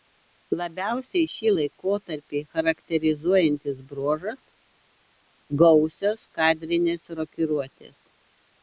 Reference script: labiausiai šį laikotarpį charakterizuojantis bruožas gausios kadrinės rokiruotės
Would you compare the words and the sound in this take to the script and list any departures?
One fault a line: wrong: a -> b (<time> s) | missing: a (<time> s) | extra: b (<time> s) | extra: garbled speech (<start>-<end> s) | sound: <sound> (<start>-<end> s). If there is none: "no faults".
no faults